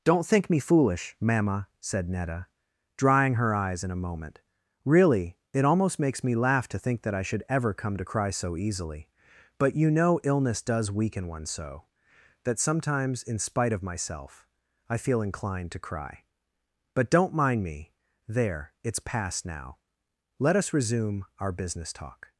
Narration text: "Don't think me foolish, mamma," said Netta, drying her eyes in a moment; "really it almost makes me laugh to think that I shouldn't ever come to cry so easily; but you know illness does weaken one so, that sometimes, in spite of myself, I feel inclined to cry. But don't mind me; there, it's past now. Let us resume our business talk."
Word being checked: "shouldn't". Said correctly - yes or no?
no